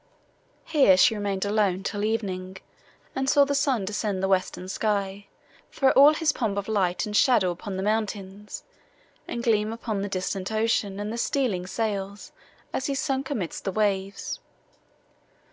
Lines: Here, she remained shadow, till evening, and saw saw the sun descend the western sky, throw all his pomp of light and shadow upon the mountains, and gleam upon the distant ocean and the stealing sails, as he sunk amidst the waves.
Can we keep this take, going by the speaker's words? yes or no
no